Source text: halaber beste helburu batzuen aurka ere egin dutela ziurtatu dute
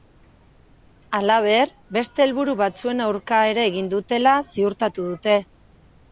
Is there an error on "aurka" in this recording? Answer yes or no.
no